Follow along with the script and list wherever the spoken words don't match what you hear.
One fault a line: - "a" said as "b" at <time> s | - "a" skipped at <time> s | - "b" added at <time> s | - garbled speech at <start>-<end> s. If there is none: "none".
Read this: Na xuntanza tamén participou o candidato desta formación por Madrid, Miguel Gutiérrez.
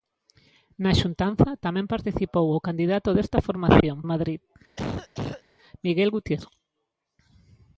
- "por" skipped at 4.0 s